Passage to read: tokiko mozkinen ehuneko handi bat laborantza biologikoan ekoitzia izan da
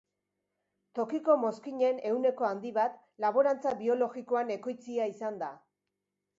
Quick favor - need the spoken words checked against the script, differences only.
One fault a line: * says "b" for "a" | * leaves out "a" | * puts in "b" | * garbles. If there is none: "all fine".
all fine